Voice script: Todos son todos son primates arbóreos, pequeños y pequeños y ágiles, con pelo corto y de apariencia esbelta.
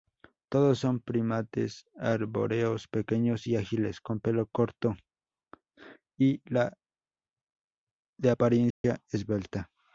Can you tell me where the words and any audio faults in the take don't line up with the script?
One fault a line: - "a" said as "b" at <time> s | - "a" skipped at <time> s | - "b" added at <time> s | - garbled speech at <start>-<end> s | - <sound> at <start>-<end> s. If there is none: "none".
- "todos son" skipped at 1.0 s
- "pequeños y" skipped at 3.6 s
- dropout at 8.7-8.8 s